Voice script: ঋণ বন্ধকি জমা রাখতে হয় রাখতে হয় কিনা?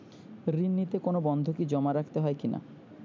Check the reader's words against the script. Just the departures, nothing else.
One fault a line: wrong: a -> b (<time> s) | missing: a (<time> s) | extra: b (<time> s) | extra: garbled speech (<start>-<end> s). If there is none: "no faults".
extra: নিতে কোনো (0.7 s)
missing: রাখতে হয় (2.4 s)